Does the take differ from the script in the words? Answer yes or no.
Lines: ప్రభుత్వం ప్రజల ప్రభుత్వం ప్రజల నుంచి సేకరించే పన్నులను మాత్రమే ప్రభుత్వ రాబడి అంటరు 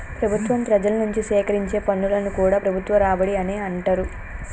yes